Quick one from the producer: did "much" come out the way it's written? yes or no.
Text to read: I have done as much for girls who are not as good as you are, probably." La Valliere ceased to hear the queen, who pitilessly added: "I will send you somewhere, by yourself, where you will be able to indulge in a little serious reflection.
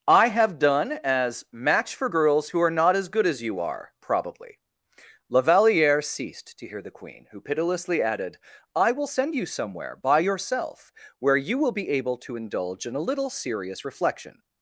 no